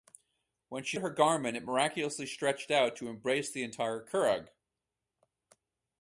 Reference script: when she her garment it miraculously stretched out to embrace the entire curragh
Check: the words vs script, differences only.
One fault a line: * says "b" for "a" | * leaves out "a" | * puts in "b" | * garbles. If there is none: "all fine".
all fine